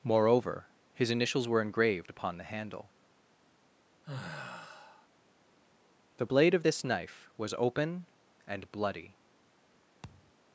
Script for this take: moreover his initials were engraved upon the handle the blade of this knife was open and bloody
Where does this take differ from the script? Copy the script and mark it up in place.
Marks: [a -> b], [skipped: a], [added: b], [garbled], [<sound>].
moreover his initials were engraved upon the handle [sigh] the blade of this knife was open and bloody [thud]